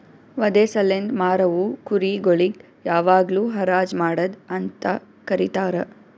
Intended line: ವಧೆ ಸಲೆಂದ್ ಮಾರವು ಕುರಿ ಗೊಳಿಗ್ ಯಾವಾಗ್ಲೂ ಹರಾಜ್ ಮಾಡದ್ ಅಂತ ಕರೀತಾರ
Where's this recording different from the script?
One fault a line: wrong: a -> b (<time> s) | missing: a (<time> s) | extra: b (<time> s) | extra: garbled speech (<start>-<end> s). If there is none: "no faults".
no faults